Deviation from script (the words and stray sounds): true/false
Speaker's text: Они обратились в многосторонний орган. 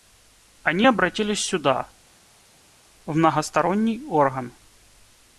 true